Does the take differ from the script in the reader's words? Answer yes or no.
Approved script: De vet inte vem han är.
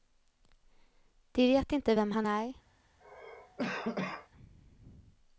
no